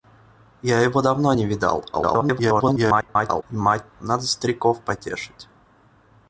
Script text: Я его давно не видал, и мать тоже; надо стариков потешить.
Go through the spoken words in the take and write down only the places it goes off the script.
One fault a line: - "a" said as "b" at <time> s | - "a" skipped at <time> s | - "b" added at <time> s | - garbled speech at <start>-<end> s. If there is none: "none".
- garbled speech at 1.9-3.4 s
- "тоже" skipped at 3.9 s